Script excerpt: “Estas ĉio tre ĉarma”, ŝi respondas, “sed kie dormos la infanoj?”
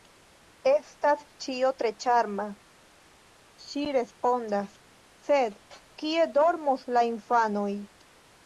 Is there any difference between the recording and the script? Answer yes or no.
no